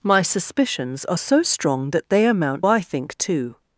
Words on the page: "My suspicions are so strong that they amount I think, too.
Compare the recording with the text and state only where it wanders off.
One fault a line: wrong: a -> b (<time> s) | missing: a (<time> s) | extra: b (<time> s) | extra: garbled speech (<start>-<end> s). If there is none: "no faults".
no faults